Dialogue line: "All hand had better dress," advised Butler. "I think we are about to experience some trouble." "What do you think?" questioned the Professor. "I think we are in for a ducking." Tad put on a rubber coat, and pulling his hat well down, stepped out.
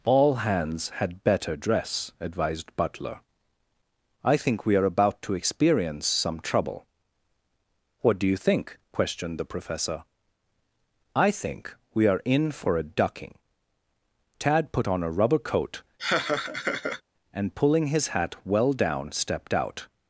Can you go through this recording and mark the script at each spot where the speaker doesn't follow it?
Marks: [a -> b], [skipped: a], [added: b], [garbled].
"All [hand -> hands] had better dress," advised Butler. "I think we are about to experience some trouble." "What do you think?" questioned the Professor. "I think we are in for a ducking." Tad put on a rubber coat, and pulling his hat well down, stepped out.